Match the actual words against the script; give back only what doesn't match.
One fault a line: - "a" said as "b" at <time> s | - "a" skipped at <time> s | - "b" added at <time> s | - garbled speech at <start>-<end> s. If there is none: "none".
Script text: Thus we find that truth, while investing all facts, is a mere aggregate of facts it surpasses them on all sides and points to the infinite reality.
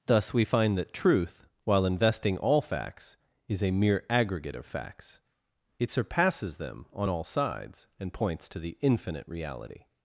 none